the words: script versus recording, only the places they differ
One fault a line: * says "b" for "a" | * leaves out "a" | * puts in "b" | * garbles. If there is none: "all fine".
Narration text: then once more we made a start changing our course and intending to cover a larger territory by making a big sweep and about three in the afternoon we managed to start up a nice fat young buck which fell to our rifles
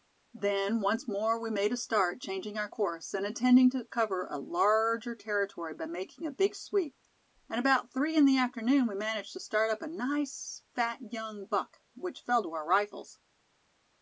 all fine